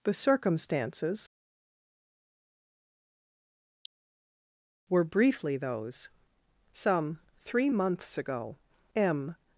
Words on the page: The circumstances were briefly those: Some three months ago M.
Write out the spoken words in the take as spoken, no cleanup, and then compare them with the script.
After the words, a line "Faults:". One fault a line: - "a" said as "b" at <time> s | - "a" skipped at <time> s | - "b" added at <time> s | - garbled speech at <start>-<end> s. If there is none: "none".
The circumstances were briefly those: Some three months ago M.
Faults:
none